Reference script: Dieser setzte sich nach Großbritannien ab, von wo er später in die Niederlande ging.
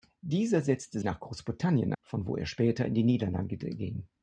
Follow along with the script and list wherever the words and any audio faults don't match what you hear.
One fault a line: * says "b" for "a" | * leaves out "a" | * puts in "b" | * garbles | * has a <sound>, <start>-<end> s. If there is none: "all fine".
* leaves out "sich"
* leaves out "ab"